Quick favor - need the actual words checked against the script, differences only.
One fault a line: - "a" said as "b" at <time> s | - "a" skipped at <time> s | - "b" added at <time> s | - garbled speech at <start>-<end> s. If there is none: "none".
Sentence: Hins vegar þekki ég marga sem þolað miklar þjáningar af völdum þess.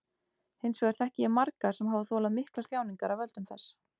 - "hafa" added at 1.9 s